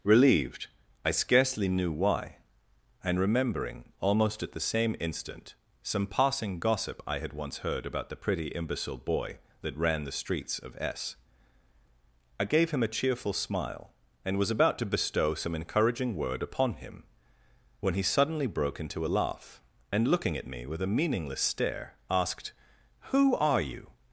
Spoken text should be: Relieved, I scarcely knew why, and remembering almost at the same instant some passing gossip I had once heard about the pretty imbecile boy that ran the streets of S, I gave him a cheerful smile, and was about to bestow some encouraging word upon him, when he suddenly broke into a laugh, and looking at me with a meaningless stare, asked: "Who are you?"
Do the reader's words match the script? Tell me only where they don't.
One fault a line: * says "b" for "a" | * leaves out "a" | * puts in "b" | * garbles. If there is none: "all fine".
all fine